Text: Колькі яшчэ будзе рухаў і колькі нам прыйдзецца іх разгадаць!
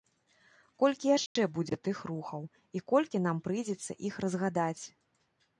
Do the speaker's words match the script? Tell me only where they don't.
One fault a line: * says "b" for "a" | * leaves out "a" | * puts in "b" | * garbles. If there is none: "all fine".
* puts in "тых"